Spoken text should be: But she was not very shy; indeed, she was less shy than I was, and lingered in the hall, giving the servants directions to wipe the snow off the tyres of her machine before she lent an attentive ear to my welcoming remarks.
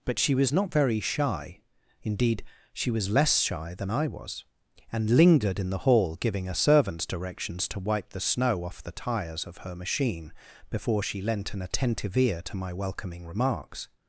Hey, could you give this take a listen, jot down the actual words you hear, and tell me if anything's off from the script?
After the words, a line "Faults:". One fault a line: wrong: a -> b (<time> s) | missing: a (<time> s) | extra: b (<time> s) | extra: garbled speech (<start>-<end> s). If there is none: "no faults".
But she was not very shy; indeed, she was less shy than I was, and lingered in the hall, giving a servants directions to wipe the snow off the tyres of her machine before she lent an attentive ear to my welcoming remarks.
Faults:
wrong: the -> a (6.5 s)